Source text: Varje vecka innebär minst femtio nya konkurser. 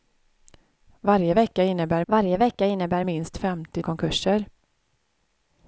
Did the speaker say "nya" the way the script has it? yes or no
no